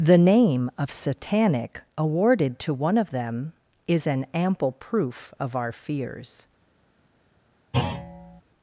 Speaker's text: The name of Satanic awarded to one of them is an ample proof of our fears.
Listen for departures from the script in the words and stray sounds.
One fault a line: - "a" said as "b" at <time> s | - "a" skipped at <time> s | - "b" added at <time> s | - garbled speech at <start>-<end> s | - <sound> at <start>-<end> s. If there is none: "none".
- thud at 7.7-8.4 s